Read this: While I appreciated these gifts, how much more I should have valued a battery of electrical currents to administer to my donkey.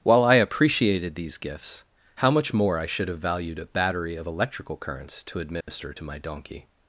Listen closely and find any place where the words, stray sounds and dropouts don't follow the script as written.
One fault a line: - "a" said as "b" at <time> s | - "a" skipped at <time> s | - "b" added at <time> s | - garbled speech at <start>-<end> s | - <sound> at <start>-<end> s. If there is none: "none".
- dropout at 5.6-5.7 s